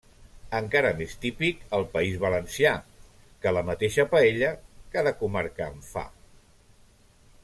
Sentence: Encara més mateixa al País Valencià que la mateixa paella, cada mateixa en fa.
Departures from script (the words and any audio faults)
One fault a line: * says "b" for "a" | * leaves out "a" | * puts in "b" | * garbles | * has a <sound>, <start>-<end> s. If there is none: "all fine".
* says "típic" for "mateixa"
* says "comarca" for "mateixa"